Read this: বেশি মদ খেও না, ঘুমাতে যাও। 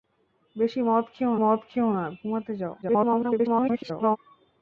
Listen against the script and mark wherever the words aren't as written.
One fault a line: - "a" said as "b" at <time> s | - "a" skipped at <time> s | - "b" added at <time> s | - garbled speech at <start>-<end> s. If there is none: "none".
- "মদ খেও" added at 1.3 s
- garbled speech at 2.8-4.2 s